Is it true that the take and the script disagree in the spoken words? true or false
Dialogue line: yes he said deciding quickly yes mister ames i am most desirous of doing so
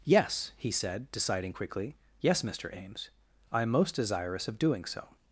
false